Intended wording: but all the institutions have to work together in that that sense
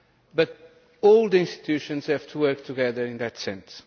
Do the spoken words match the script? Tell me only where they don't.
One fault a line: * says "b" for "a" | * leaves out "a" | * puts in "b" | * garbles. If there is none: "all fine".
* leaves out "that"